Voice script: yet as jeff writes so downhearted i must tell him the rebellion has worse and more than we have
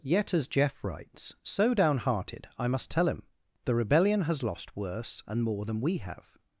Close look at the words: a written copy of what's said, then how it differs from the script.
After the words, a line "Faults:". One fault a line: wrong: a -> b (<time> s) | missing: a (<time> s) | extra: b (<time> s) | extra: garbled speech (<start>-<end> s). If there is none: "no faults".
yet as jeff writes so downhearted i must tell him the rebellion has lost worse and more than we have
Faults:
extra: lost (4.4 s)